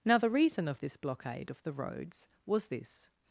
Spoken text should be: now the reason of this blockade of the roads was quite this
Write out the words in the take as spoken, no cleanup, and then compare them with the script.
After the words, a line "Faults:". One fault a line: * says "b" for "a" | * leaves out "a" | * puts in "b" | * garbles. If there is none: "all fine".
now the reason of this blockade of the roads was this
Faults:
* leaves out "quite"